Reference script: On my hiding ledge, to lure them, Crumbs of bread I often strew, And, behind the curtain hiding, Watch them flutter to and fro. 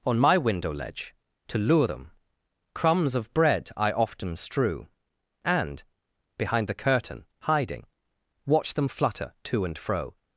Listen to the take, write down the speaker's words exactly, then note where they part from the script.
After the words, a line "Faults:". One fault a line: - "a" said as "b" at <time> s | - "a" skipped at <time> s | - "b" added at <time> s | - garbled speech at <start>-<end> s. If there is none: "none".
On my window ledge, to lure them, Crumbs of bread I often strew, And, behind the curtain hiding, Watch them flutter to and fro.
Faults:
- "hiding" said as "window" at 0.3 s